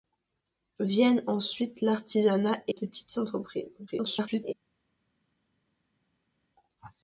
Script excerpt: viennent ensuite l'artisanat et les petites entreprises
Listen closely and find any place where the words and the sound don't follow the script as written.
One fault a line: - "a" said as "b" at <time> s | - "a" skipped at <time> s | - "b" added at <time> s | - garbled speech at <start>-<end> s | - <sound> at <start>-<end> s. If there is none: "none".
- "les" skipped at 2.7 s
- garbled speech at 3.9-4.5 s